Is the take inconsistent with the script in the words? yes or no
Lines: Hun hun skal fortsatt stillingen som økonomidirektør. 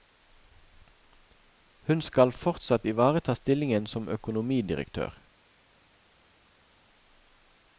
yes